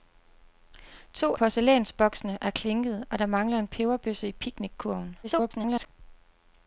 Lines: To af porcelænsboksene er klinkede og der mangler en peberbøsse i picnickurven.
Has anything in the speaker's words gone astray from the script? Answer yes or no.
yes